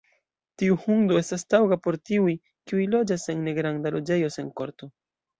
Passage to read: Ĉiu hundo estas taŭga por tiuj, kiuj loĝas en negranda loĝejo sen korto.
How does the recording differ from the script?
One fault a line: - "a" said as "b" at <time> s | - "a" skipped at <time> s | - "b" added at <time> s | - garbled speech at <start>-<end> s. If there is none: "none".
- "Ĉiu" said as "Tiu" at 0.6 s